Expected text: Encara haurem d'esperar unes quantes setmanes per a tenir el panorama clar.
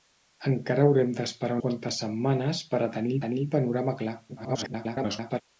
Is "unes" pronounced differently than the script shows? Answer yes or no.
yes